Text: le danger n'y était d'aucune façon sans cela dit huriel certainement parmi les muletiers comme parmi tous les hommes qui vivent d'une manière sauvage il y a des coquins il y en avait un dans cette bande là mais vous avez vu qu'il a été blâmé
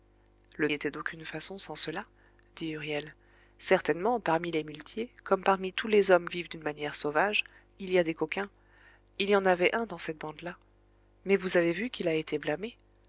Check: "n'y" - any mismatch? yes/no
yes